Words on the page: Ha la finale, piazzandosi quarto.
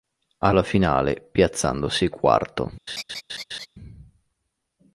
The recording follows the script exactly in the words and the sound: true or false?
false